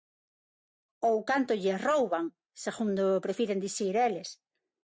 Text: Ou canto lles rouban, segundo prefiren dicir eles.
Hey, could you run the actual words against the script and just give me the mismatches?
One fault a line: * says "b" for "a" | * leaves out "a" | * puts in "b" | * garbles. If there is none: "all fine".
all fine